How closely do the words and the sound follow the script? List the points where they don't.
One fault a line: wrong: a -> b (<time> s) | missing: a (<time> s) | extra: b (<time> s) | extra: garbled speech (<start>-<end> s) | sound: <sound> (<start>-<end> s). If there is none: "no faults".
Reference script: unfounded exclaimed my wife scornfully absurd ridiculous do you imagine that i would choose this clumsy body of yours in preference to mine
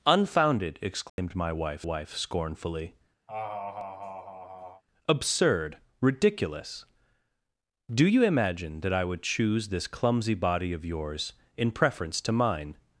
sound: dropout (1.1-1.2 s)
extra: wife (1.8 s)
sound: laugh (3.3-4.8 s)